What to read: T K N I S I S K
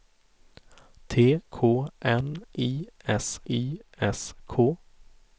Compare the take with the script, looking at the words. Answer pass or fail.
pass